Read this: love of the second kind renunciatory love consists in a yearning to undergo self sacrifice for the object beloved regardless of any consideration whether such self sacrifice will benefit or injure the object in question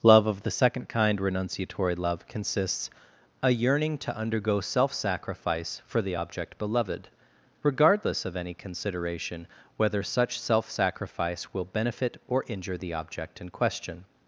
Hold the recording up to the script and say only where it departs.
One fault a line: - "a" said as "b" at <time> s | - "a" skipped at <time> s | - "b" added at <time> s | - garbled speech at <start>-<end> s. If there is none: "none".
- "in" skipped at 2.9 s